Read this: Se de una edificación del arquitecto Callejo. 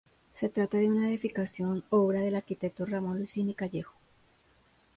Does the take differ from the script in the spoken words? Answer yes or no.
yes